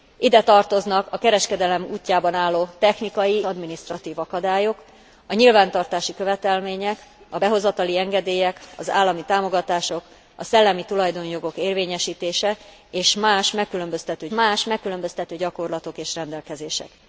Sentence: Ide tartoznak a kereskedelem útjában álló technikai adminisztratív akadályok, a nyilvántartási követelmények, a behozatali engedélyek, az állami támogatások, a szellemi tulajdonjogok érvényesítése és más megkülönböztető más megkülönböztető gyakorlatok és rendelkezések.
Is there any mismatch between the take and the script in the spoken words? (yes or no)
no